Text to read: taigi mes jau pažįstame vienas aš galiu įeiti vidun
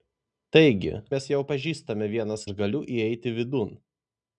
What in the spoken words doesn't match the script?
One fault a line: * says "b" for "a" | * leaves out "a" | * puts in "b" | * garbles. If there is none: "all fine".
all fine